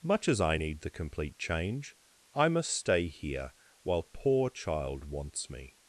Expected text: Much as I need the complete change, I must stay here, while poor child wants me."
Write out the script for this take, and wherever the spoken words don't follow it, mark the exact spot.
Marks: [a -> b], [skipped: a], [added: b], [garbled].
Much as I need the complete change, I must stay here, while poor child wants me."